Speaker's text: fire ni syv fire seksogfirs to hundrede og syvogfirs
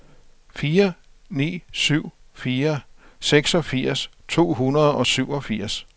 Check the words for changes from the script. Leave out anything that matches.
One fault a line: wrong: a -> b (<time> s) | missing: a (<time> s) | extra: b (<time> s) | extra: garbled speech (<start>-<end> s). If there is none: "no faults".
no faults